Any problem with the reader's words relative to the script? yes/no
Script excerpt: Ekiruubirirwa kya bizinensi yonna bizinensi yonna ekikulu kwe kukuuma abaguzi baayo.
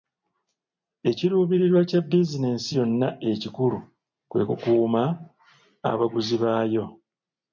yes